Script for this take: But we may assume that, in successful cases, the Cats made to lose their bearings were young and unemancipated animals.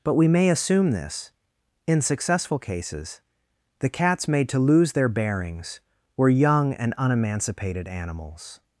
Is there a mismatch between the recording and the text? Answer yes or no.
yes